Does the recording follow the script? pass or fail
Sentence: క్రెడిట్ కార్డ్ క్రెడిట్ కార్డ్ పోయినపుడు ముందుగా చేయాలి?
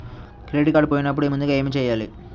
fail